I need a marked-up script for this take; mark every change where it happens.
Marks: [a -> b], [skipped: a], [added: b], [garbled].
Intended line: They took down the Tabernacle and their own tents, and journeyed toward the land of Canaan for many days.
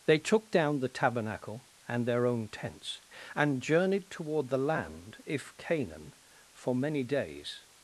They took down the Tabernacle and their own tents, and journeyed toward the land [of -> if] Canaan for many days.